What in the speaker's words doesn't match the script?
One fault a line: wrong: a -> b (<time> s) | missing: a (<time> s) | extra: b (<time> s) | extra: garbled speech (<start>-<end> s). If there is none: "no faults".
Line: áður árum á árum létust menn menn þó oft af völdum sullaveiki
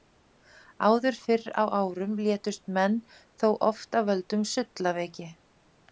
wrong: árum -> fyrr (1.2 s)
missing: menn (3.0 s)